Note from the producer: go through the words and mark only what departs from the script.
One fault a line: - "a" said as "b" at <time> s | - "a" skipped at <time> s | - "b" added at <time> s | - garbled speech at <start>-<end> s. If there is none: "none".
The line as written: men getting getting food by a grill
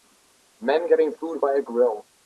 - "getting" skipped at 1.1 s